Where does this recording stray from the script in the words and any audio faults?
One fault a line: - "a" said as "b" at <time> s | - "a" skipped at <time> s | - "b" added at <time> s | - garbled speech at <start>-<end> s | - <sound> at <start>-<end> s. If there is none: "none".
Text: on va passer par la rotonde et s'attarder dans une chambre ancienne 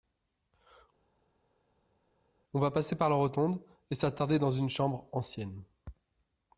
none